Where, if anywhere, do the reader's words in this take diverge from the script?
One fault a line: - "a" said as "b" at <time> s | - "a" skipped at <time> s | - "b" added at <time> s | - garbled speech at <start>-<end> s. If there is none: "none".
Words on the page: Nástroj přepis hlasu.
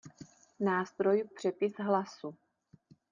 none